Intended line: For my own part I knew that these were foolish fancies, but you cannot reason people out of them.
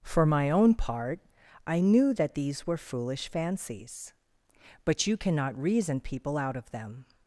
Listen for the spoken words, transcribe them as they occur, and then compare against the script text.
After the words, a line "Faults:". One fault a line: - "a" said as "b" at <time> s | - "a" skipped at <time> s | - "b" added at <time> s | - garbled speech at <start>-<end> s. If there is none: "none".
For my own part I knew that these were foolish fancies, but you cannot reason people out of them.
Faults:
none